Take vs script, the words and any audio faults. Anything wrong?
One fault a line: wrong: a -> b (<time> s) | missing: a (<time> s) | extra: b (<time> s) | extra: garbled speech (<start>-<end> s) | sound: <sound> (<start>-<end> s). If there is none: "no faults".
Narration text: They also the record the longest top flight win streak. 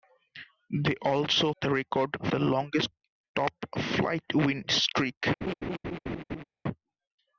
sound: laugh (5.4-6.4 s)